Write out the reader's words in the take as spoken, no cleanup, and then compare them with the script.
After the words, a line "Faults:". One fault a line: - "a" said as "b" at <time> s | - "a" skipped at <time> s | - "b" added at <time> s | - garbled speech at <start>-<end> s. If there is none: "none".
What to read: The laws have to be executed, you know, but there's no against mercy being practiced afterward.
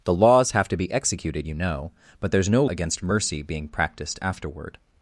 The laws have to be executed, you know, but there's no against mercy being practiced afterward.
Faults:
none